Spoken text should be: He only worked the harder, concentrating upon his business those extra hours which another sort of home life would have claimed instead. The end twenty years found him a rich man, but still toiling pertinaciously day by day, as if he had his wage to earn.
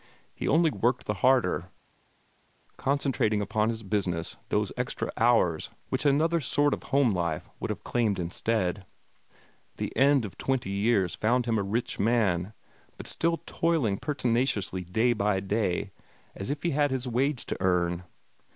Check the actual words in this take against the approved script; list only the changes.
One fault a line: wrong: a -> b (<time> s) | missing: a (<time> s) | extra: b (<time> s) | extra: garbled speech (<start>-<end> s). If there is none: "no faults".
extra: of (10.2 s)